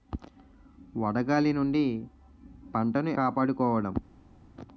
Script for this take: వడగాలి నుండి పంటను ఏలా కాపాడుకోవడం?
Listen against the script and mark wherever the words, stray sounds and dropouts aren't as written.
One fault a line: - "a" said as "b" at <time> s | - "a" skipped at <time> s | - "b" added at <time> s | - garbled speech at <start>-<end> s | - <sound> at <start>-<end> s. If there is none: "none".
- "ఏలా" skipped at 3.1 s